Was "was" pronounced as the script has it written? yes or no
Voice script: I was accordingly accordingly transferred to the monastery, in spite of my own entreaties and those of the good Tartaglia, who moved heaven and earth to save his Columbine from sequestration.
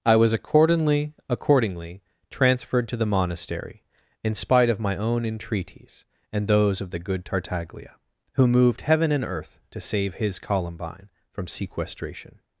yes